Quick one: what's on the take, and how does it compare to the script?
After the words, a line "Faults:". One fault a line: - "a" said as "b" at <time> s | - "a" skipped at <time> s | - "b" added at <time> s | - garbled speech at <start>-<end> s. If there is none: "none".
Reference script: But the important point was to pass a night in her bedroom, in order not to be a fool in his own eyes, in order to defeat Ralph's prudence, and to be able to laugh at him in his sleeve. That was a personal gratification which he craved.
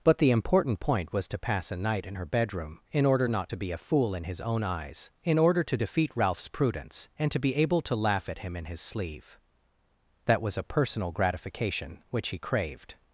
But the important point was to pass a night in her bedroom, in order not to be a fool in his own eyes, in order to defeat Ralph's prudence, and to be able to laugh at him in his sleeve. That was a personal gratification which he craved.
Faults:
none